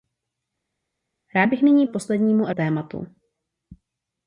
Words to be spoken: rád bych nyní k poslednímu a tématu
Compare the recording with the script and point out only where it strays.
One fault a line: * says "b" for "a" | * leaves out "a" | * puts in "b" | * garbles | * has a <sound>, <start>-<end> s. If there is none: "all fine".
all fine